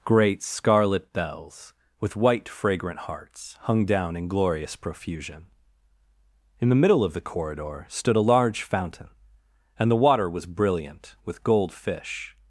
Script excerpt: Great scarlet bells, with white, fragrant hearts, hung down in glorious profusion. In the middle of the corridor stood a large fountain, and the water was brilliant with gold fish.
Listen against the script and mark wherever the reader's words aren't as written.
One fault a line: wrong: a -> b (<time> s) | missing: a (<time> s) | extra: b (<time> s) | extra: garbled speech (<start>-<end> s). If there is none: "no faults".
no faults